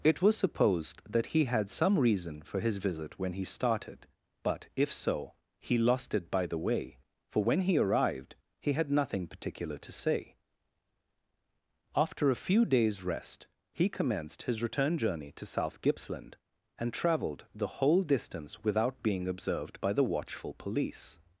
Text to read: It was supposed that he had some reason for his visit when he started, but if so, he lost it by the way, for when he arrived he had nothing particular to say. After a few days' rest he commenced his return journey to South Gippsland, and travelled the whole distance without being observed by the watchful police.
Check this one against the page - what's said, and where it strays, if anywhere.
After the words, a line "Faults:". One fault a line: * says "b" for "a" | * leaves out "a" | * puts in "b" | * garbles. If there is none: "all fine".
It was supposed that he had some reason for his visit when he started, but if so, he lost it by the way, for when he arrived he had nothing particular to say. After a few days' rest he commenced his return journey to South Gippsland, and travelled the whole distance without being observed by the watchful police.
Faults:
all fine